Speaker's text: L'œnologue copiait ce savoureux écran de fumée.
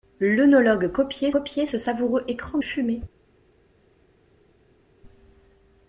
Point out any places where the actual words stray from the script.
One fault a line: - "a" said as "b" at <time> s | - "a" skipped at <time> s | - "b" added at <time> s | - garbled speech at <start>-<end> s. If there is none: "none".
- "copiait" added at 1.3 s
- "de" skipped at 2.6 s